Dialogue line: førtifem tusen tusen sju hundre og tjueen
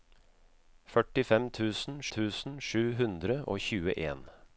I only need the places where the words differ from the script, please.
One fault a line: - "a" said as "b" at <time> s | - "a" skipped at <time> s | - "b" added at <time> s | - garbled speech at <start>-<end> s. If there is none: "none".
none